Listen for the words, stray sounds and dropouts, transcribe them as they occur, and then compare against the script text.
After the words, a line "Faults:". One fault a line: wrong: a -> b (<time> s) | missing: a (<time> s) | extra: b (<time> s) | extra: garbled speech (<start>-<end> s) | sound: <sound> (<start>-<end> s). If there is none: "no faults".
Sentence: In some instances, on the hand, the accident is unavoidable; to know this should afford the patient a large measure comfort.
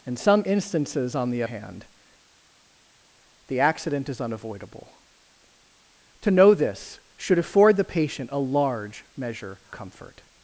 In some instances, on the hand, the accident is unavoidable; to know this should afford the patient a large measure comfort.
Faults:
no faults